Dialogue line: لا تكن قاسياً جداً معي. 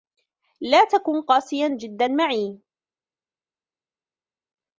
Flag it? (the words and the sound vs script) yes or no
no